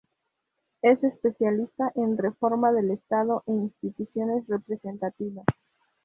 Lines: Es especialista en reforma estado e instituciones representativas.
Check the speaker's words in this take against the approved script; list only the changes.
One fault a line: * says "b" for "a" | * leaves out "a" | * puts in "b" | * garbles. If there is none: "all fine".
* puts in "del"